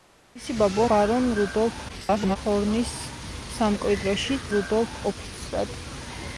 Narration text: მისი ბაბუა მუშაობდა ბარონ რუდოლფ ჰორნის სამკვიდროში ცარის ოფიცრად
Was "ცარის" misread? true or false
true